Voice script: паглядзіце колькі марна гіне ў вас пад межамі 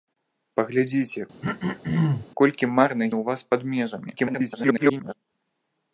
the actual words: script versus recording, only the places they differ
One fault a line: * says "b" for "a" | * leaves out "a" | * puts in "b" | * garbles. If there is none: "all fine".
* leaves out "гіне"
* garbles